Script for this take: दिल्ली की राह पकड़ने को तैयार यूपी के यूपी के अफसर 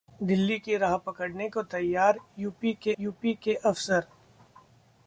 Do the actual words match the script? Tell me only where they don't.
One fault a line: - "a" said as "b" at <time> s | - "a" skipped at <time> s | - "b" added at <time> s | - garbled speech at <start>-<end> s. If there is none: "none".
none